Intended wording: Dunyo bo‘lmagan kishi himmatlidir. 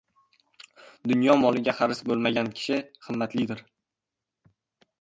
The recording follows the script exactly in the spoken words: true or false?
false